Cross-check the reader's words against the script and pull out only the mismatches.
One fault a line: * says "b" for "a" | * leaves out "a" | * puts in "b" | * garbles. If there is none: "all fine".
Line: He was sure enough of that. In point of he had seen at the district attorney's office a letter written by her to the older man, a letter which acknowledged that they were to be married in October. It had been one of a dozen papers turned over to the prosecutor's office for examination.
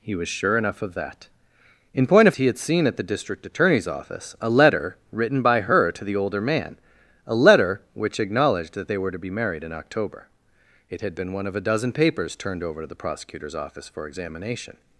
all fine